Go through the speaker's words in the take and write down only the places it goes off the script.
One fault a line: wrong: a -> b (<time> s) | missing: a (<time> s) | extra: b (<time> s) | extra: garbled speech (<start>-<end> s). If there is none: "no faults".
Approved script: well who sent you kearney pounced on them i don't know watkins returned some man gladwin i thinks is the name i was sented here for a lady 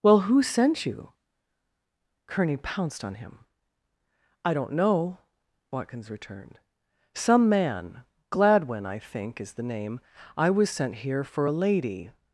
wrong: them -> him (3.1 s)
wrong: thinks -> think (9.0 s)
wrong: sented -> sent (10.7 s)